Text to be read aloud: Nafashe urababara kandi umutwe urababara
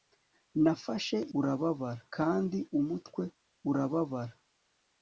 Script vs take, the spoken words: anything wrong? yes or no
no